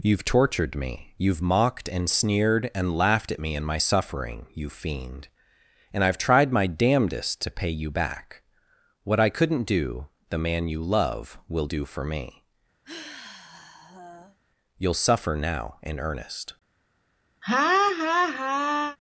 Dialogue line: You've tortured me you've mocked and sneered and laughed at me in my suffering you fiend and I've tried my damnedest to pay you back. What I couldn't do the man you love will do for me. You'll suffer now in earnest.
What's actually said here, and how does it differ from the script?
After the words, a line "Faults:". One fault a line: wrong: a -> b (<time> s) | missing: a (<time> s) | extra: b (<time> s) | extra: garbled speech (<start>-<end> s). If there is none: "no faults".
You've tortured me you've mocked and sneered and laughed at me in my suffering you fiend and I've tried my damnedest to pay you back. What I couldn't do the man you love will do for me. You'll suffer now in earnest.
Faults:
no faults